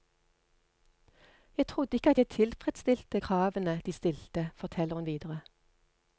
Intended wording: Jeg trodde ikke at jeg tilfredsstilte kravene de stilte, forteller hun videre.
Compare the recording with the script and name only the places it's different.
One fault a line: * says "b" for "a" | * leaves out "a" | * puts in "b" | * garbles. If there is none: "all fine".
all fine